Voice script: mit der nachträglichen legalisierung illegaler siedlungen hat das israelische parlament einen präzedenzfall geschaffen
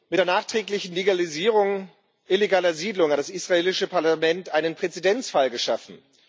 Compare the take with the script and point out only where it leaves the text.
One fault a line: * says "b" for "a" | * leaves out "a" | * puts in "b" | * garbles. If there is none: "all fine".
all fine